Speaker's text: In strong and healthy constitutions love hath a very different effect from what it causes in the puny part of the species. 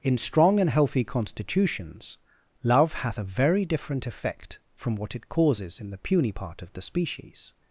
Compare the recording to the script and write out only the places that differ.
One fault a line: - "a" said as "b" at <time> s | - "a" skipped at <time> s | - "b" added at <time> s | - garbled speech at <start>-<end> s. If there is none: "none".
none